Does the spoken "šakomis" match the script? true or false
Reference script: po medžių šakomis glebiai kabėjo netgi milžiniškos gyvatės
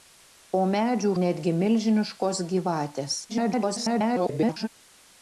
false